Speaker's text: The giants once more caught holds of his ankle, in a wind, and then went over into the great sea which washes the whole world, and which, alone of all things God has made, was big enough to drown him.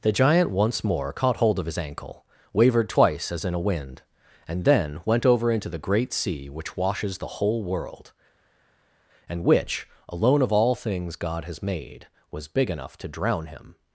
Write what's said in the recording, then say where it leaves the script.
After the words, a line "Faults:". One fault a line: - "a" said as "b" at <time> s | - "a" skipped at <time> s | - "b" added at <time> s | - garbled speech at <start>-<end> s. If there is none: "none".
The giant once more caught hold of his ankle, wavered twice as in a wind, and then went over into the great sea which washes the whole world, and which, alone of all things God has made, was big enough to drown him.
Faults:
- "giants" said as "giant" at 0.1 s
- "holds" said as "hold" at 1.4 s
- "wavered twice as" added at 2.5 s